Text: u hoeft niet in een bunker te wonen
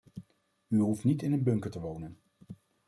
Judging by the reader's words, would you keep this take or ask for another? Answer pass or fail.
pass